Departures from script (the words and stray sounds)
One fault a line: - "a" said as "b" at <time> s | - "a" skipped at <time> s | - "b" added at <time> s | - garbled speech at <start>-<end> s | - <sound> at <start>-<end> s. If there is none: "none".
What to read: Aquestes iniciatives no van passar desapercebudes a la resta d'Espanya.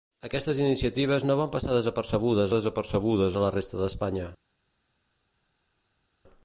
- "desapercebudes" added at 2.5 s